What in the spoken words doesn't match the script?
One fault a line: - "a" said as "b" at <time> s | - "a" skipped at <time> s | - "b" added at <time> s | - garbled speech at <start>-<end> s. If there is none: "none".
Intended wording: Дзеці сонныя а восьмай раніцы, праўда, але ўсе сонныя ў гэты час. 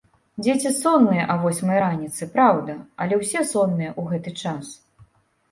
none